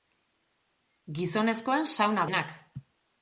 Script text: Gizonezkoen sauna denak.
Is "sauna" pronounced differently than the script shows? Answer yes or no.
no